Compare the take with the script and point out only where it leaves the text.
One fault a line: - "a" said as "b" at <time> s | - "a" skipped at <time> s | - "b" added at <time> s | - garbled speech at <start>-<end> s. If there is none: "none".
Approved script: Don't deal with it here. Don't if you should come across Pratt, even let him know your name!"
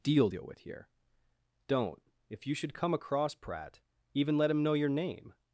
- "Don't" said as "Deal" at 0.0 s
- "it" skipped at 0.6 s